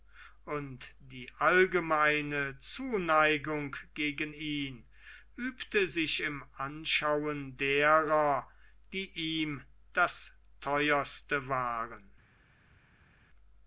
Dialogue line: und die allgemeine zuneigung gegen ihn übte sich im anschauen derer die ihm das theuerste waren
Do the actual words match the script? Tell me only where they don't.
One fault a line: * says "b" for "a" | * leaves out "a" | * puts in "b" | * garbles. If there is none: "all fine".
all fine